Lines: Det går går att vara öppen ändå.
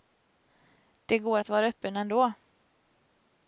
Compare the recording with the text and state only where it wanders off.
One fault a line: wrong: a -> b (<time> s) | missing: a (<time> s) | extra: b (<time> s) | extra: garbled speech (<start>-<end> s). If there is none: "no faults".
missing: går (1.4 s)